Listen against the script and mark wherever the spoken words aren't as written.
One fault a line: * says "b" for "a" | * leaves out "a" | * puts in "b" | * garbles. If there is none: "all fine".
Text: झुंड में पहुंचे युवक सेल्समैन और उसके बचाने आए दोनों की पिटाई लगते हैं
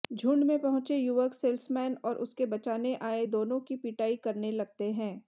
* puts in "करने"